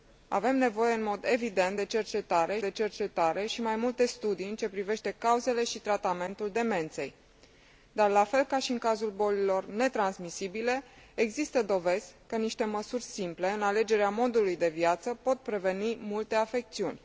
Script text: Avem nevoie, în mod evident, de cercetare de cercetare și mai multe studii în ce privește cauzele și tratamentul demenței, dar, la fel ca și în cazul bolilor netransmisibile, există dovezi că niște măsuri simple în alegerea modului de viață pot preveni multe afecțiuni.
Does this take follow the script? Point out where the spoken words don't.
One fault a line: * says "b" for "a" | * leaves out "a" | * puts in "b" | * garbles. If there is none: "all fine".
all fine